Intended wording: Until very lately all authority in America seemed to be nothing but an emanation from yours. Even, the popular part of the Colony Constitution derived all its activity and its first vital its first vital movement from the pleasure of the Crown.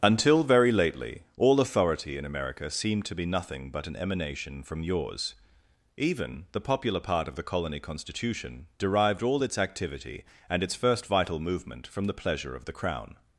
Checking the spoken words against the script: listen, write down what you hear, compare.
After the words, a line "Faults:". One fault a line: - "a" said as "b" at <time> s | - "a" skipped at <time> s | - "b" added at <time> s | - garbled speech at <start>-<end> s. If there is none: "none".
Until very lately all authority in America seemed to be nothing but an emanation from yours. Even, the popular part of the Colony Constitution derived all its activity and its first vital movement from the pleasure of the Crown.
Faults:
- "its first vital" skipped at 11.4 s